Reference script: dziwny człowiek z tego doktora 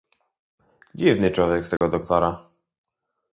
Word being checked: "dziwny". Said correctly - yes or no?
yes